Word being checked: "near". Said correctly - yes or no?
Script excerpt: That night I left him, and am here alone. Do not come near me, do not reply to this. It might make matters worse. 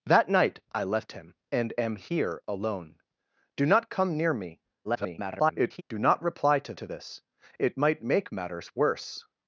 yes